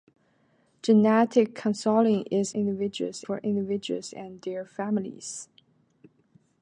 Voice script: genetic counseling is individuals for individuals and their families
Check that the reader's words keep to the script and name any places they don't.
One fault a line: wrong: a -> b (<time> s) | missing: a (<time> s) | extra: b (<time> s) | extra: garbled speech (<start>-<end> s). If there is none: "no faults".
no faults